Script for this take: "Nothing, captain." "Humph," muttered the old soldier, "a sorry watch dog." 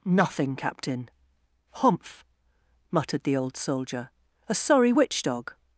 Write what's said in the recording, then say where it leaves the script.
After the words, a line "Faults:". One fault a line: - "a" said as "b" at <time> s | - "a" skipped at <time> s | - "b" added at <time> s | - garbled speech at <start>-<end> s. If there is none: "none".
"Nothing, captain." "Humph," muttered the old soldier, "a sorry witch dog."
Faults:
- "watch" said as "witch" at 4.9 s